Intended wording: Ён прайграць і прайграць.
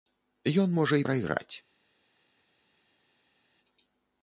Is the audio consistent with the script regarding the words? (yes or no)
no